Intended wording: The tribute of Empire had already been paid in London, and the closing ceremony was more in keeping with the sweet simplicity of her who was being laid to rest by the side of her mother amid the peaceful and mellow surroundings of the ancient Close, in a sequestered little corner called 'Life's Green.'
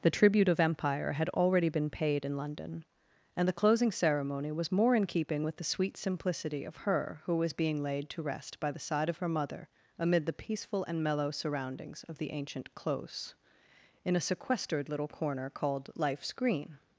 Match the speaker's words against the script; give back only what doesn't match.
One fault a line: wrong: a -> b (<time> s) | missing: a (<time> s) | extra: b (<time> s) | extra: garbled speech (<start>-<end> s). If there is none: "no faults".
no faults